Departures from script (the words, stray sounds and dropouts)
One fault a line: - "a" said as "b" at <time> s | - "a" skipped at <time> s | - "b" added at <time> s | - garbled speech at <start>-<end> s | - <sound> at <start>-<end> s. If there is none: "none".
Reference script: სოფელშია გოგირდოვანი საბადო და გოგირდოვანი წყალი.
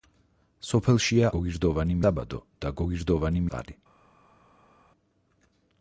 none